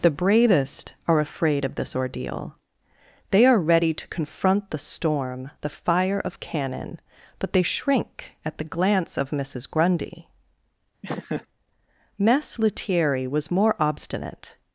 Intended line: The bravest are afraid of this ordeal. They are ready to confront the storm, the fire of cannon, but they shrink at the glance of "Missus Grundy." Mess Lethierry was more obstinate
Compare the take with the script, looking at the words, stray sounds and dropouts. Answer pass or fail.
fail